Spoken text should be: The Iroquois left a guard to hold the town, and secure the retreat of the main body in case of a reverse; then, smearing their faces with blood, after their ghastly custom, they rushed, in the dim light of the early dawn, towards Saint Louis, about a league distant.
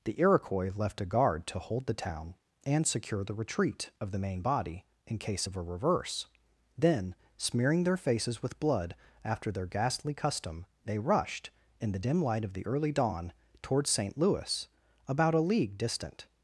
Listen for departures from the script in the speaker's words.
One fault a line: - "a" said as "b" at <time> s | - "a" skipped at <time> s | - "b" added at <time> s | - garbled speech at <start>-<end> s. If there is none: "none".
none